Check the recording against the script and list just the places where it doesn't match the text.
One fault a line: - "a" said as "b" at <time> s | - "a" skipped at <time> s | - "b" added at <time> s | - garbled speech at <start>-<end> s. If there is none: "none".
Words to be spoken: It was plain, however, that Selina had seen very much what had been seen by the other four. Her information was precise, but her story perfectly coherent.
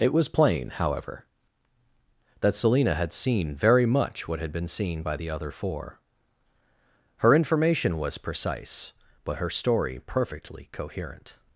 none